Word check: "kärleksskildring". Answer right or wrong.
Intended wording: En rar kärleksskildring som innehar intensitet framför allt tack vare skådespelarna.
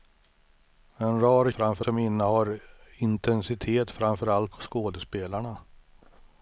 wrong